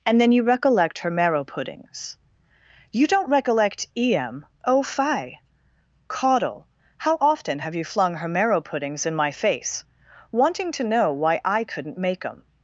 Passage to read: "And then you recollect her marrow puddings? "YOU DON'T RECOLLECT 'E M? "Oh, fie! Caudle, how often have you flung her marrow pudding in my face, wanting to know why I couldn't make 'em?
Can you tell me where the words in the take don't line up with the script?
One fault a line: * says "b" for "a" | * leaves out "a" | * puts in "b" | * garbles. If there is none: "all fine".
* says "puddings" for "pudding"